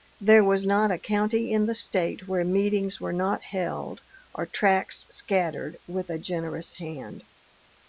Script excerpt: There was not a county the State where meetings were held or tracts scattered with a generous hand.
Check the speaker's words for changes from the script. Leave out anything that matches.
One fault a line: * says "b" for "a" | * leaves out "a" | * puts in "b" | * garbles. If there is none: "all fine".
* puts in "in"
* puts in "not"